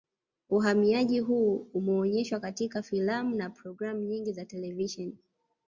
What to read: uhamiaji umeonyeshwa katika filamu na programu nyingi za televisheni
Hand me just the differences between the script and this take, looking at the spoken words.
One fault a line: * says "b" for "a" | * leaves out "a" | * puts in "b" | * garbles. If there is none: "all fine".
* puts in "huu"